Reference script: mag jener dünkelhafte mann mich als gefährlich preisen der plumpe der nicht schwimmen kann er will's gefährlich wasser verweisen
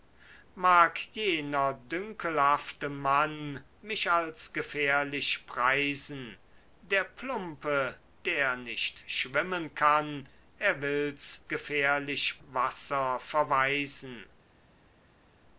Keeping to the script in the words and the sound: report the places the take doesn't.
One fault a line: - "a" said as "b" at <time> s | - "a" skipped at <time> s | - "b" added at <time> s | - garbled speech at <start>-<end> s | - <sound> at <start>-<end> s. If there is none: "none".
none